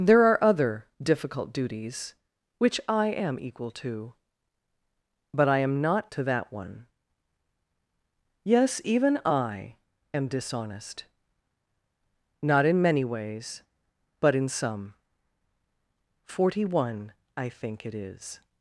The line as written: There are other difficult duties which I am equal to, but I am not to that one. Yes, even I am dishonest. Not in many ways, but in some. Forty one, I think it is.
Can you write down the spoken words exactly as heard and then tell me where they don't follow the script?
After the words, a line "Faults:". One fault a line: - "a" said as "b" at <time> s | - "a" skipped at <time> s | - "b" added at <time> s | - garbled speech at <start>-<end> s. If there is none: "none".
There are other difficult duties which I am equal to, but I am not to that one. Yes, even I am dishonest. Not in many ways, but in some. Forty one, I think it is.
Faults:
none